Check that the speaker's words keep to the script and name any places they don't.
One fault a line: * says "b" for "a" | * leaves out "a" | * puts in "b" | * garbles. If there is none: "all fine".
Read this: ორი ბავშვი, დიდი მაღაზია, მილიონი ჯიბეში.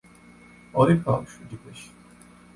* leaves out "დიდი მაღაზია მილიონი"